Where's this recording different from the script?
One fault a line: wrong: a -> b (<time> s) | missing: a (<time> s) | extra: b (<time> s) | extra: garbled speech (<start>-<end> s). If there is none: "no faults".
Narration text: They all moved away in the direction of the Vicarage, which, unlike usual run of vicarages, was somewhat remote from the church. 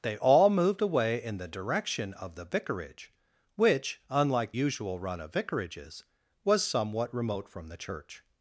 no faults